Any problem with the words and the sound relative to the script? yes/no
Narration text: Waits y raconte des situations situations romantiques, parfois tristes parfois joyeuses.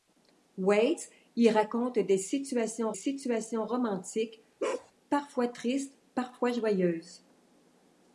yes